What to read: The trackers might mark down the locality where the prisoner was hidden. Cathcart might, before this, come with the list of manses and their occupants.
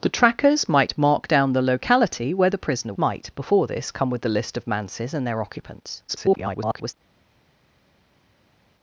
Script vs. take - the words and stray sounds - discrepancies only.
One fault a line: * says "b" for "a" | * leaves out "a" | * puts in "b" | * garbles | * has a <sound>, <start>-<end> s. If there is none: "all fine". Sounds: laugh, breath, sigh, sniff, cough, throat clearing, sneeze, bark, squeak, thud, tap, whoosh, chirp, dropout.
* leaves out "was hidden Cathcart"
* garbles